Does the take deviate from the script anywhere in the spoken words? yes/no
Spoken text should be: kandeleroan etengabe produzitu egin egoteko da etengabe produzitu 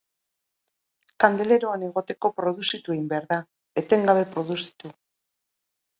yes